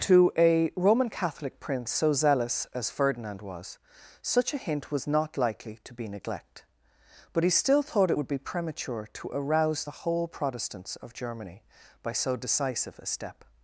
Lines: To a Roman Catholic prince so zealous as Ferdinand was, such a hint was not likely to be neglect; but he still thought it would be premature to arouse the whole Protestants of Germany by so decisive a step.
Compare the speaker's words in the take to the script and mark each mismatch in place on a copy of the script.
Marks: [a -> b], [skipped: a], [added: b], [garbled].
To a Roman Catholic prince so zealous as Ferdinand was, such a hint was not likely to be neglect; but he still thought it would be premature to arouse the whole Protestants of Germany by so decisive a step.